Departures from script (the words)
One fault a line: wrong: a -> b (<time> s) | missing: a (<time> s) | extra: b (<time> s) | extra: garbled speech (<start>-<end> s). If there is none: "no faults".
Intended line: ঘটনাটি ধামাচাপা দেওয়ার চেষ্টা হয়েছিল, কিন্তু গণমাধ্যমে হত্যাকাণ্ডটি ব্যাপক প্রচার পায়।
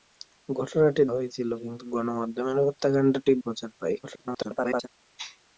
missing: ধামাচাপা দেওয়ার চেষ্টা (1.0 s)
missing: ব্যাপক (3.3 s)
extra: garbled speech (4.0-4.9 s)